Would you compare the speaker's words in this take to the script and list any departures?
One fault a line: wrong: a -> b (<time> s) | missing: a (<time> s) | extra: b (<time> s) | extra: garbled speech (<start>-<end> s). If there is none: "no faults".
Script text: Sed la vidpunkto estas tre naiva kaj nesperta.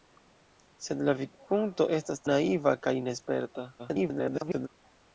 missing: tre (2.2 s)
extra: garbled speech (3.8-4.7 s)